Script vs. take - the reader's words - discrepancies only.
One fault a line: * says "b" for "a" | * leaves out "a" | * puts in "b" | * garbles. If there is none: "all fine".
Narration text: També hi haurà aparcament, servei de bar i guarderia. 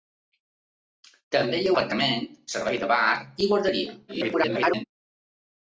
* leaves out "haurà"
* garbles